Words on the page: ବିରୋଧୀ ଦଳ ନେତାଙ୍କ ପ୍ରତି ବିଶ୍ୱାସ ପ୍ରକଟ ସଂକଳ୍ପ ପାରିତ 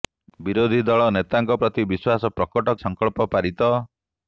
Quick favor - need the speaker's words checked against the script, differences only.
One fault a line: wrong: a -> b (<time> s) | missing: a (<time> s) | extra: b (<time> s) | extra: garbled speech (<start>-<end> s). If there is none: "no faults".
no faults